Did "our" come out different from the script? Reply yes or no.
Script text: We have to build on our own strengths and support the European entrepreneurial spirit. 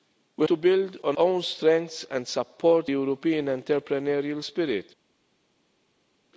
yes